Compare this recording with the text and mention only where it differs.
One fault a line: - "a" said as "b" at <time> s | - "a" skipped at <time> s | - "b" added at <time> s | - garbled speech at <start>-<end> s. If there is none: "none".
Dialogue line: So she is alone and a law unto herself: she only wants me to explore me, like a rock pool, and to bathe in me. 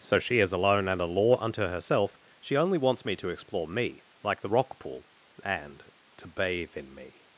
- "a" said as "the" at 4.4 s